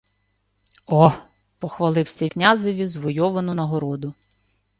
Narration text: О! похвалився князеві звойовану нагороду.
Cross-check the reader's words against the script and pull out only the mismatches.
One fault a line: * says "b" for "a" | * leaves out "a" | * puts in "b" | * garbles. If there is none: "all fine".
all fine